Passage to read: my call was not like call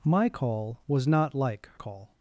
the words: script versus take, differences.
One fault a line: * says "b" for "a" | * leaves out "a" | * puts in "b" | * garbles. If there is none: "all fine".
all fine